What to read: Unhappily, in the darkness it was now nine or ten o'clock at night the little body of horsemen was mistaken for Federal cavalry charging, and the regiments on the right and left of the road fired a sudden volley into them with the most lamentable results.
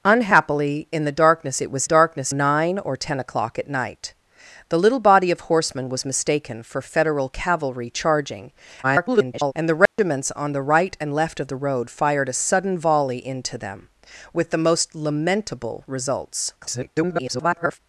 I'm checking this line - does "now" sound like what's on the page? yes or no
no